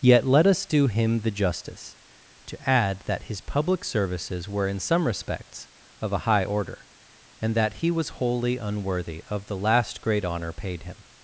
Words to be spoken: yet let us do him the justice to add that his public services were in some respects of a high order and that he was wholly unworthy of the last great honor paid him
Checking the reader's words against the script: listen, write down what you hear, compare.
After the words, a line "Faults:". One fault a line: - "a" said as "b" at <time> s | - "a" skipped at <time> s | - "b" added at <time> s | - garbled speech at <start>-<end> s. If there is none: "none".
yet let us do him the justice to add that his public services were in some respects of a high order and that he was wholly unworthy of the last great honor paid him
Faults:
none